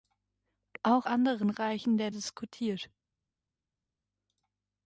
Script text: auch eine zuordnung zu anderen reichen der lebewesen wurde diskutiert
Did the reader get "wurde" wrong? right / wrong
wrong